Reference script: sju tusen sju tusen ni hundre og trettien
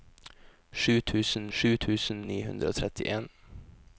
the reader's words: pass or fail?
pass